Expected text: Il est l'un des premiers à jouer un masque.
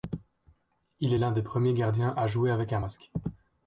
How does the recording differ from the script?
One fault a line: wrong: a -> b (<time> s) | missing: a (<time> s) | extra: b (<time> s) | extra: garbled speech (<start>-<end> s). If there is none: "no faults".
extra: gardiens (1.7 s)
extra: avec (2.5 s)